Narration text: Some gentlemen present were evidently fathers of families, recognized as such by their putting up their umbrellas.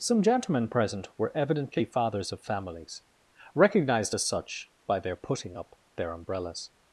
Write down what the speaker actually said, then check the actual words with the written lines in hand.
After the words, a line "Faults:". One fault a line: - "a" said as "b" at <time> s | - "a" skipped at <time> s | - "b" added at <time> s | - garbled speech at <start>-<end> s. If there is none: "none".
Some gentlemen present were evidently fathers of families, recognized as such by their putting up their umbrellas.
Faults:
none